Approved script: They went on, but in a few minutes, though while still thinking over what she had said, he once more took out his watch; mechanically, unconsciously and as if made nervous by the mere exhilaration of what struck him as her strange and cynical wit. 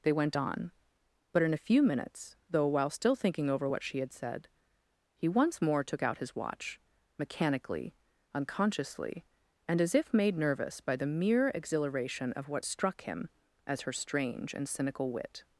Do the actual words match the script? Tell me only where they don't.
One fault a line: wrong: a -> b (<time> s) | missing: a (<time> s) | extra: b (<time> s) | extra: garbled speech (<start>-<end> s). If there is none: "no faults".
no faults